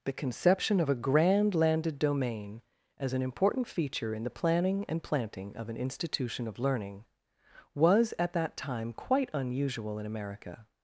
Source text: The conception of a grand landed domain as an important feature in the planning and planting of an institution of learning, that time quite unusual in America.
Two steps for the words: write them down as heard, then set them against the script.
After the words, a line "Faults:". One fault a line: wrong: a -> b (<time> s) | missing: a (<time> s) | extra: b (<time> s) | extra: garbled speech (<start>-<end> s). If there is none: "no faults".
The conception of a grand landed domain as an important feature in the planning and planting of an institution of learning, was at that time quite unusual in America.
Faults:
extra: was at (7.8 s)